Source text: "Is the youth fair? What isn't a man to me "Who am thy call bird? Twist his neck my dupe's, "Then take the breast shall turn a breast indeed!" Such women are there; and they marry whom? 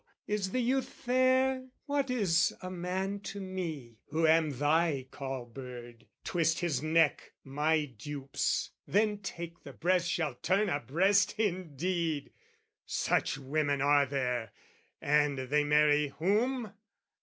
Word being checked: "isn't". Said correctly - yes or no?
no